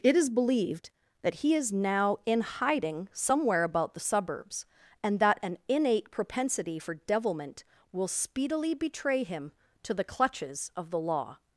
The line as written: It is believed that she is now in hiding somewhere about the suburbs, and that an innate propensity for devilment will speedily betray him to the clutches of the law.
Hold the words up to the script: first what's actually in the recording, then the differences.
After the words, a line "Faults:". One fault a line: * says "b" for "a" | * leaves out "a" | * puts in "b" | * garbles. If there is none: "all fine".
It is believed that he is now in hiding somewhere about the suburbs, and that an innate propensity for devilment will speedily betray him to the clutches of the law.
Faults:
* says "he" for "she"